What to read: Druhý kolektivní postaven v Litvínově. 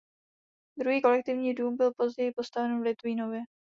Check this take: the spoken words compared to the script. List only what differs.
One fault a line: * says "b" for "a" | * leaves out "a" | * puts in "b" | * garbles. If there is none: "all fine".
* puts in "dům byl později"